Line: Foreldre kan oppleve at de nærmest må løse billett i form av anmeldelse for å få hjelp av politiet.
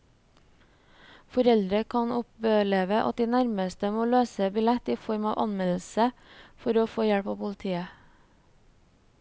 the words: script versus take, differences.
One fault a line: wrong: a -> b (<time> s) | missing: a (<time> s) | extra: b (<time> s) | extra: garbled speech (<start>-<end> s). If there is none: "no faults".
no faults